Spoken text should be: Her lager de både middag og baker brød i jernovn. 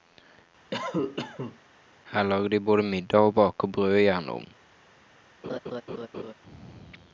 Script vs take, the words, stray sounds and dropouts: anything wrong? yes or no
yes